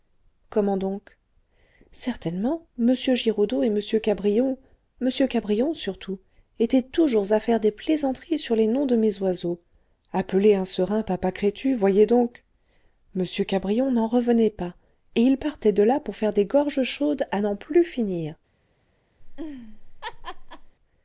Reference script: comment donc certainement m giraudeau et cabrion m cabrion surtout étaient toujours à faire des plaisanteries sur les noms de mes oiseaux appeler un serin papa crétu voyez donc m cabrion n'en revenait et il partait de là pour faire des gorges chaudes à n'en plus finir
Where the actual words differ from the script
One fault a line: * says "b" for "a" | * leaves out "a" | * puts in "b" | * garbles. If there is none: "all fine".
* puts in "m"
* puts in "pas"